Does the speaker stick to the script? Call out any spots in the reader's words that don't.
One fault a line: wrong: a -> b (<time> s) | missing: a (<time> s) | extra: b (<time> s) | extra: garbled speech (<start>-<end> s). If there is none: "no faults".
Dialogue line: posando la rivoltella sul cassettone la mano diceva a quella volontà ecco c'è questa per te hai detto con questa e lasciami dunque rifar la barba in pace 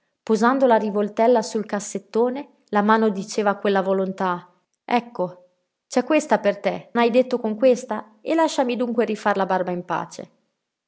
no faults